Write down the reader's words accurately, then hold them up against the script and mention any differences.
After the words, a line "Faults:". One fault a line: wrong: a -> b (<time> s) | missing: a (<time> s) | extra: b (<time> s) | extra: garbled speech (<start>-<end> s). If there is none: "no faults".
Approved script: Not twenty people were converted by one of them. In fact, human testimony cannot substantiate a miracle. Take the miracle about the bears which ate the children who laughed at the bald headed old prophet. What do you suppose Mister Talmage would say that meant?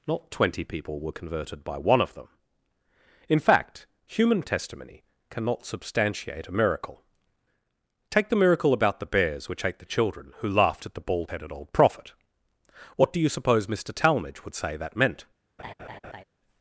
Not twenty people were converted by one of them. In fact, human testimony cannot substantiate a miracle. Take the miracle about the bears which ate the children who laughed at the bald headed old prophet. What do you suppose Mister Talmage would say that meant?
Faults:
no faults